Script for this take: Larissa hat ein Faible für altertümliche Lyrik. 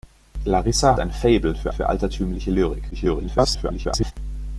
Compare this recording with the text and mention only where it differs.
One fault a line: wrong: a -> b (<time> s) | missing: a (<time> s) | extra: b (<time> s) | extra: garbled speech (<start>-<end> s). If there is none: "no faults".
missing: hat (0.9 s)
extra: für (1.7 s)
extra: garbled speech (2.9-4.1 s)